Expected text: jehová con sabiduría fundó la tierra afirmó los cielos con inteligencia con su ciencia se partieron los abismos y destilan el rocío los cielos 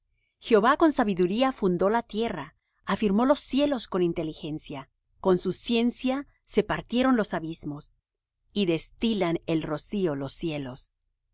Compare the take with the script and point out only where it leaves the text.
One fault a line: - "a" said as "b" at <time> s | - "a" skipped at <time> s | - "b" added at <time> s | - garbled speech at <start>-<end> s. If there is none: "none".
none